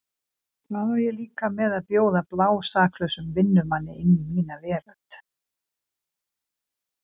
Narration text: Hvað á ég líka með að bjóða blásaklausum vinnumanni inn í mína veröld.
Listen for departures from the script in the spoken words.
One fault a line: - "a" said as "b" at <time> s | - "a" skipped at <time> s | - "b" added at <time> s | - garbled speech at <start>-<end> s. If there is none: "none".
none